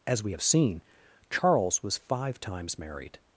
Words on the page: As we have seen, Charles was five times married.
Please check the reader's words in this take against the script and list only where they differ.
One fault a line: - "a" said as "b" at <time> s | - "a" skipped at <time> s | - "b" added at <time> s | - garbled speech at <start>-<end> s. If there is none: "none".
none